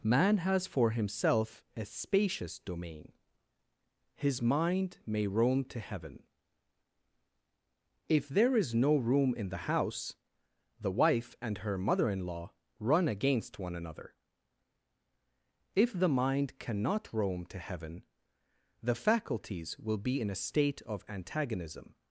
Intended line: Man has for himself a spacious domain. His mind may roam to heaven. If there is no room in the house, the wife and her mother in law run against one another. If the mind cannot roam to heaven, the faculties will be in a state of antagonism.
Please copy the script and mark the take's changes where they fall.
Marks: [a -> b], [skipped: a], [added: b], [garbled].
Man has for himself a spacious domain. His mind may roam to heaven. If there is no room in the house, the wife and her mother in law run against one another. If the mind cannot roam to heaven, the faculties will be in a state of antagonism.